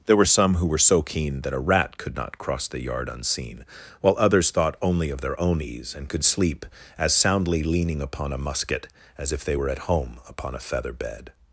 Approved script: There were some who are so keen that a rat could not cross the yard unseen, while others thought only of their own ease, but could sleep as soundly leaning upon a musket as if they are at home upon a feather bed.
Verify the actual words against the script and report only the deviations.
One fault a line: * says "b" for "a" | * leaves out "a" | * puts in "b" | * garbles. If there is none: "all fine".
* says "were" for "are"
* says "and" for "but"
* says "were" for "are"